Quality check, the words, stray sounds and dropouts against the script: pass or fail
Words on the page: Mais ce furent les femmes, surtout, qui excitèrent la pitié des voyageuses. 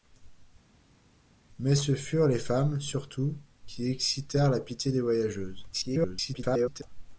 fail